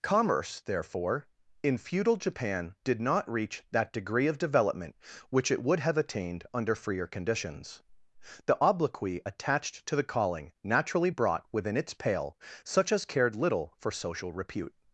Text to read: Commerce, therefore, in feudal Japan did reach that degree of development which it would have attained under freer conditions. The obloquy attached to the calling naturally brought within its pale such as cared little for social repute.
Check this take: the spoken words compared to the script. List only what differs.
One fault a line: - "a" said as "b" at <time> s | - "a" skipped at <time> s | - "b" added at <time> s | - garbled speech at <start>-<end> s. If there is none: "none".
- "not" added at 3.0 s